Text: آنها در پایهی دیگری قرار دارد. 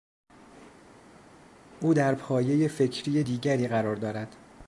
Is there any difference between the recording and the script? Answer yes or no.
yes